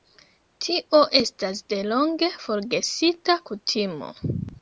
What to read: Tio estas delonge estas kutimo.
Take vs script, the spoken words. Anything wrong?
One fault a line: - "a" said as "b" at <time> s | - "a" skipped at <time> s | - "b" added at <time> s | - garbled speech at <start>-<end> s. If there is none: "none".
- "estas" said as "forgesita" at 2.4 s